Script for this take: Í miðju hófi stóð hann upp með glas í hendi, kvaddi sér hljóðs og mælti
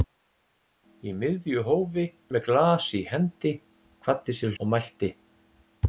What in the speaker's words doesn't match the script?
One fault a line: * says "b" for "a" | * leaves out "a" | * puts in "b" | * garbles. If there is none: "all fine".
* leaves out "stóð hann upp"
* leaves out "hljóðs"